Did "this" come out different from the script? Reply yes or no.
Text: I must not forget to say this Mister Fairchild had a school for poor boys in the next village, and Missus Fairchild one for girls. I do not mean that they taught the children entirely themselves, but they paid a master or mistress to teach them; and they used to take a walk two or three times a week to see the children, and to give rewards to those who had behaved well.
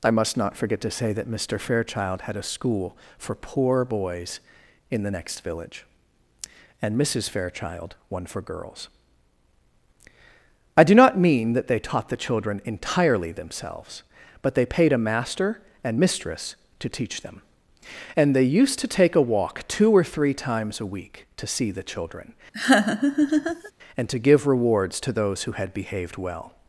yes